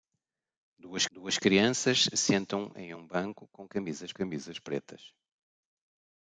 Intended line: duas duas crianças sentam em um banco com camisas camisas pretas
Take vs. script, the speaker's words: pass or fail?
pass